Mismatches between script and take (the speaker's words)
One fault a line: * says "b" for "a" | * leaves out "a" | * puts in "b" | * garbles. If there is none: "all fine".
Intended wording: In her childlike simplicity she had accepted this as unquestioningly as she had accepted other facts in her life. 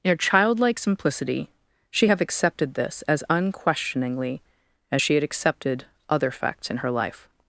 * says "have" for "had"